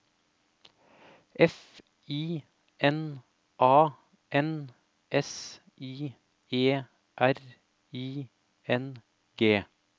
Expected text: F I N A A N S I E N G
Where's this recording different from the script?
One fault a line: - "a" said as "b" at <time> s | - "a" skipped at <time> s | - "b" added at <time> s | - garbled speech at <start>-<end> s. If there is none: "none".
- "A" skipped at 3.9 s
- "R I" added at 7.2 s